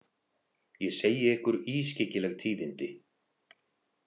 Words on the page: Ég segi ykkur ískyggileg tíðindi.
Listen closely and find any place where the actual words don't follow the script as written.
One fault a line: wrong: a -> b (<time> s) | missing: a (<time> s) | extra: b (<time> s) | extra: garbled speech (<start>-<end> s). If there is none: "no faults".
no faults